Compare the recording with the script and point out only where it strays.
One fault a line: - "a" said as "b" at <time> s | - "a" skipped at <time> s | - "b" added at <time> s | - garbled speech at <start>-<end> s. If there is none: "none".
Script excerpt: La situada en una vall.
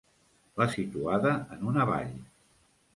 none